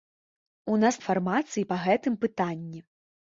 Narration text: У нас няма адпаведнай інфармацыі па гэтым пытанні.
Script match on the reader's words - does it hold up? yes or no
no